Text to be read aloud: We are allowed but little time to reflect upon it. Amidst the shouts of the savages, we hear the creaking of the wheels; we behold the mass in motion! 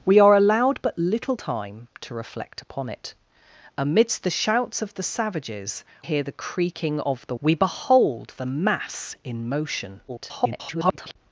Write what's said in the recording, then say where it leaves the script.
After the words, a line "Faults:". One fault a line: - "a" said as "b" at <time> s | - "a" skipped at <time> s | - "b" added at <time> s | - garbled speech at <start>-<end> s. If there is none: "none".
We are allowed but little time to reflect upon it. Amidst the shouts of the savages, hear the creaking of the; we behold the mass in motion! [garbled]
Faults:
- "we" skipped at 5.8 s
- "wheels" skipped at 7.3 s
- garbled speech at 10.1-11.2 s